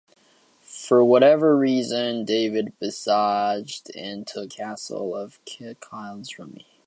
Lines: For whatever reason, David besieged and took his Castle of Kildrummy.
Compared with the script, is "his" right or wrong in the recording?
wrong